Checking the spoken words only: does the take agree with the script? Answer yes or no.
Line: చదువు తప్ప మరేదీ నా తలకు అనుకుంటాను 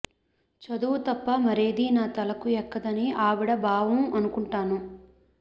no